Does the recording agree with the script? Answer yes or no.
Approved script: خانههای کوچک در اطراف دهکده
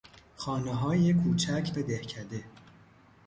no